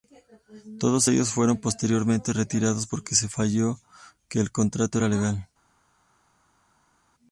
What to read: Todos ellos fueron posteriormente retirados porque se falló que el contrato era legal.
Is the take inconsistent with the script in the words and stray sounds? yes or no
no